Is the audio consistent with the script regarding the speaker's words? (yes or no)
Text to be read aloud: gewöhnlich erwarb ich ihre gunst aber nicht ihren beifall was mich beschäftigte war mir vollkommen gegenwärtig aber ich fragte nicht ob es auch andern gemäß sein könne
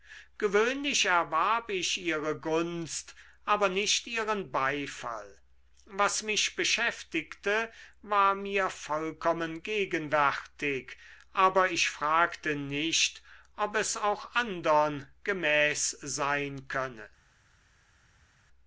yes